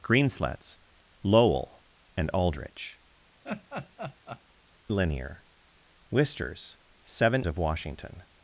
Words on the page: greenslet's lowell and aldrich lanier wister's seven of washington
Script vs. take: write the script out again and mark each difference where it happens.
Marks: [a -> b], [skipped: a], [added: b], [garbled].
greenslet's lowell and aldrich lanier wister's seven of washington